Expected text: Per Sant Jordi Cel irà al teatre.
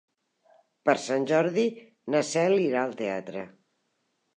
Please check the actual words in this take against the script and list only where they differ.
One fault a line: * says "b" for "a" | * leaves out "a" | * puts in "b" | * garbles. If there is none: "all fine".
* puts in "na"